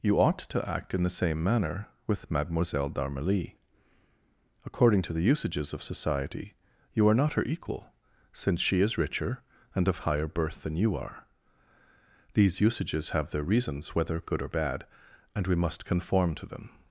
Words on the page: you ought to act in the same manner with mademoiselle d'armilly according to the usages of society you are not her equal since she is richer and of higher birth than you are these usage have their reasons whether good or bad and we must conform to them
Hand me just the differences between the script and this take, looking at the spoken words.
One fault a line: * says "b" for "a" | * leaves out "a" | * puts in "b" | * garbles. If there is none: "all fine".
* says "usages" for "usage"